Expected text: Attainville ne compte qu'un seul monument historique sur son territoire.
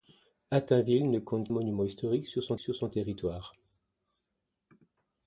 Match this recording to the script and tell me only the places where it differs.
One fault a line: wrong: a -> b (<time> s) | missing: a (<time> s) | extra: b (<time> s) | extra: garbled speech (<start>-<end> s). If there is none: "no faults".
wrong: qu'un seul monument historique -> monument historique sur son (1.5 s)